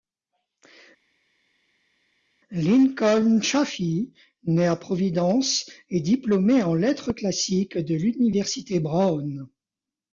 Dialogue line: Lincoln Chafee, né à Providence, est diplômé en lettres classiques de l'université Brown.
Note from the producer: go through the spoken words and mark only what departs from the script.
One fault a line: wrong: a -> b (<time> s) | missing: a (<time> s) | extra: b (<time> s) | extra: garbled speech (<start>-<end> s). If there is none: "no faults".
no faults